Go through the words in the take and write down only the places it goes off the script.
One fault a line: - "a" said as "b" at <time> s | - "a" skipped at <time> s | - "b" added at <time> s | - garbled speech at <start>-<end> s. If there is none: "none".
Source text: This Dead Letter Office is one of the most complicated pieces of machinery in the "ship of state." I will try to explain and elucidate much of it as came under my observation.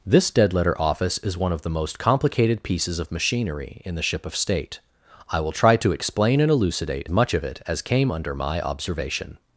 none